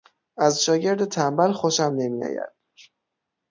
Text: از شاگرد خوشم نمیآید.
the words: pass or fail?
fail